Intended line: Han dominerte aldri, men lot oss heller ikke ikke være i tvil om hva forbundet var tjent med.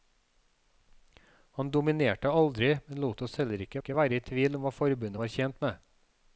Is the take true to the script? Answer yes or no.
yes